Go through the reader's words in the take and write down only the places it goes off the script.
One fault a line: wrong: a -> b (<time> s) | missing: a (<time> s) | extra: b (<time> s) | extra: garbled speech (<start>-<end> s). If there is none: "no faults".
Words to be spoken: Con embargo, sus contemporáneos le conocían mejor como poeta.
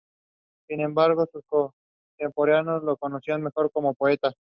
wrong: Con -> Sin (0.7 s)
wrong: le -> lo (2.8 s)